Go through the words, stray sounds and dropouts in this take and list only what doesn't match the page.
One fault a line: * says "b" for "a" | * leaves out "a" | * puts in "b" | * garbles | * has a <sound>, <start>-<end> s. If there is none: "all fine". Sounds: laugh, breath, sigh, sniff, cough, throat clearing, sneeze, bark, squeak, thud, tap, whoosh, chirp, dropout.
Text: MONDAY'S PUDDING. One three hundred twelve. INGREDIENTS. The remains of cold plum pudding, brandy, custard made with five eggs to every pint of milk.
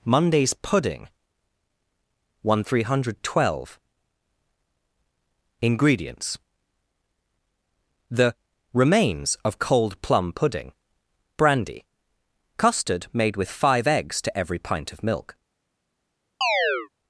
* has a chirp, 16.4-16.9 s